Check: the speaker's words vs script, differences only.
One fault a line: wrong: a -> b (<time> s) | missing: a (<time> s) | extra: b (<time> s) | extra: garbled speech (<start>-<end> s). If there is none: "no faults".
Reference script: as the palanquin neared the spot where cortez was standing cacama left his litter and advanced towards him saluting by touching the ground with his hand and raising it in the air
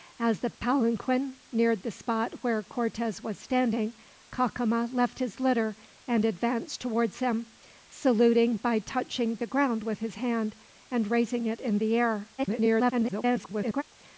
extra: garbled speech (12.4-13.8 s)